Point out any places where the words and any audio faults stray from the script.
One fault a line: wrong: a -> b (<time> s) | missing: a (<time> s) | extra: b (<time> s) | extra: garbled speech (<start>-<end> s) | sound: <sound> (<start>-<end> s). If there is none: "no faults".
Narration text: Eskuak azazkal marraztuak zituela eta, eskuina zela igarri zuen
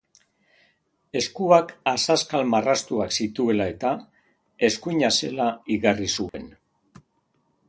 sound: dropout (6.3-6.3 s)